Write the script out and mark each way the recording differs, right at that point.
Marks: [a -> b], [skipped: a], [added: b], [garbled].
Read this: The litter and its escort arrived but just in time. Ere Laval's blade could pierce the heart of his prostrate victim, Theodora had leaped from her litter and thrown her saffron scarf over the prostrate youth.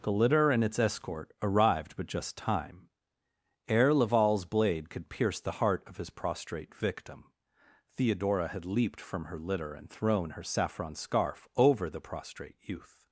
The litter and its escort arrived but just [skipped: in] time. Ere Laval's blade could pierce the heart of his prostrate victim, Theodora had leaped from her litter and thrown her saffron scarf over the prostrate youth.